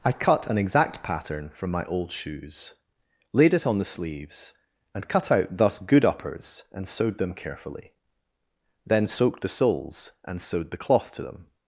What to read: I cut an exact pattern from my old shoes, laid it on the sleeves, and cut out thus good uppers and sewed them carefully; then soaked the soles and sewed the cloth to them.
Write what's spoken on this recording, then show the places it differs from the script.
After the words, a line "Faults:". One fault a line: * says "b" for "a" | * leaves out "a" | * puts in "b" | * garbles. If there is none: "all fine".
I cut an exact pattern from my old shoes, laid it on the sleeves, and cut out thus good uppers and sewed them carefully; then soaked the soles and sewed the cloth to them.
Faults:
all fine